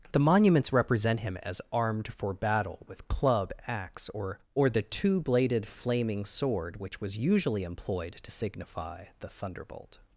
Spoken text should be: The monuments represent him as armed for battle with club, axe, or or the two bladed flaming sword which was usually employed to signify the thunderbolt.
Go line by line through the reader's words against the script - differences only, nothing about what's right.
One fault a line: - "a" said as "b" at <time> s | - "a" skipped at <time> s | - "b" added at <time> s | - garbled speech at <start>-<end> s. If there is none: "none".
none